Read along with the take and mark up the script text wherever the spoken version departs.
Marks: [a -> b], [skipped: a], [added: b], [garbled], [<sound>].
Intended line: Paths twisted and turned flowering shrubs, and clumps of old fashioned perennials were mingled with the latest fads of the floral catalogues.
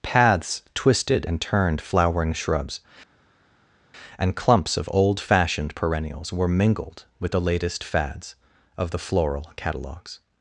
Paths twisted and turned flowering shrubs, and clumps of old fashioned perennials were mingled with the latest fads of the floral catalogues.